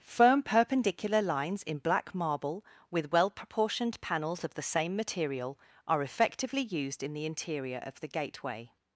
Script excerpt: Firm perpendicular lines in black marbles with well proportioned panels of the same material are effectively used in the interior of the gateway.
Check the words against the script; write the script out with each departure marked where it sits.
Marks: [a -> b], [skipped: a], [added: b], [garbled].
Firm perpendicular lines in black [marbles -> marble] with well proportioned panels of the same material are effectively used in the interior of the gateway.